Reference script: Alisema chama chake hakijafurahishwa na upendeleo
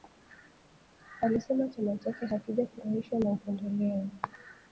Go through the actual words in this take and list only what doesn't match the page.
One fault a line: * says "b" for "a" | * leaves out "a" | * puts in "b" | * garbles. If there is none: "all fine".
all fine